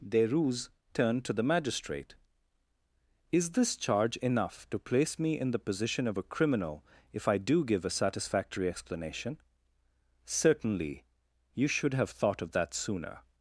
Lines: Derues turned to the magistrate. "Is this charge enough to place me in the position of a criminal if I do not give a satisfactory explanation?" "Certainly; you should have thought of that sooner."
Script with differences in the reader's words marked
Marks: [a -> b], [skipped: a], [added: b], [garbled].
Derues turned to the magistrate. "Is this charge enough to place me in the position of a criminal if I do [skipped: not] give a satisfactory explanation?" "Certainly; you should have thought of that sooner."